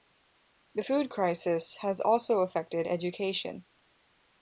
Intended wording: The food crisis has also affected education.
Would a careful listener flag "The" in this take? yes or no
no